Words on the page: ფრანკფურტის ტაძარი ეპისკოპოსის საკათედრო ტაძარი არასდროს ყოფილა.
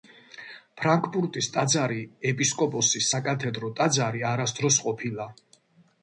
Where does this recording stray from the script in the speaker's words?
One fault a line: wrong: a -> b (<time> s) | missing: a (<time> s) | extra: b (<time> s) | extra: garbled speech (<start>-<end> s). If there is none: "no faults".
no faults